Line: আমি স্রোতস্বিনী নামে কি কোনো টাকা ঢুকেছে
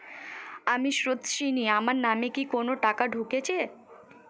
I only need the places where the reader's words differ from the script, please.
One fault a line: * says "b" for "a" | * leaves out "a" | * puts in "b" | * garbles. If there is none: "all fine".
* puts in "আমার"